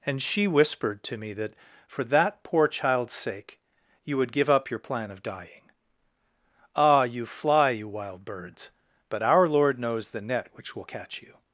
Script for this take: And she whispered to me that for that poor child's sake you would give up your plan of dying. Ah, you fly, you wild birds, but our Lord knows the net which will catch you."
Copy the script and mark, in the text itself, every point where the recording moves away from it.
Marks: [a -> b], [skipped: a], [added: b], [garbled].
And she whispered to me that for that poor child's sake you would give up your plan of dying. Ah, you fly, you wild birds, but our Lord knows the net which will catch you."